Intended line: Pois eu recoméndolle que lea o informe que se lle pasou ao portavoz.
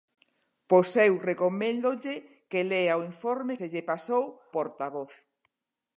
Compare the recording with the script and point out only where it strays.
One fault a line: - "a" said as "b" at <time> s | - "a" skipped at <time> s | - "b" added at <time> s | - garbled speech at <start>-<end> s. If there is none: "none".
- "que" skipped at 3.6 s
- "ao" skipped at 4.2 s